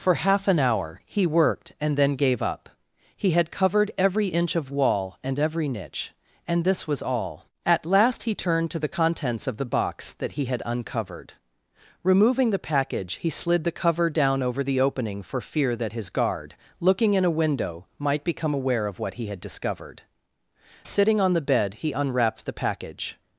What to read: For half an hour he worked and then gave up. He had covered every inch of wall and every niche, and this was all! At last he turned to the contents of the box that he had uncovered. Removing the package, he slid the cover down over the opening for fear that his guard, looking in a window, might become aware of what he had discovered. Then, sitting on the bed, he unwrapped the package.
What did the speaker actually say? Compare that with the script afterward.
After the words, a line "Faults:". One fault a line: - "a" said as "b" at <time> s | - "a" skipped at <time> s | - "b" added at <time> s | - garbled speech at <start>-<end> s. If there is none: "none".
For half an hour he worked and then gave up. He had covered every inch of wall and every niche, and this was all! At last he turned to the contents of the box that he had uncovered. Removing the package, he slid the cover down over the opening for fear that his guard, looking in a window, might become aware of what he had discovered. Sitting on the bed, he unwrapped the package.
Faults:
- "Then" skipped at 20.0 s